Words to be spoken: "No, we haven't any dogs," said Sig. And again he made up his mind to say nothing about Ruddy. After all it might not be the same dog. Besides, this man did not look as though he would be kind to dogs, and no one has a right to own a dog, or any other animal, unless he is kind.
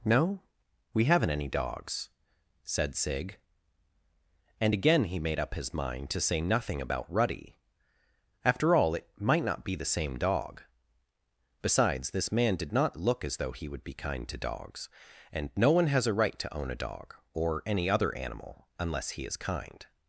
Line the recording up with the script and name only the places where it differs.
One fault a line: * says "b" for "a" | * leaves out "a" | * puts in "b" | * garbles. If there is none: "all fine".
all fine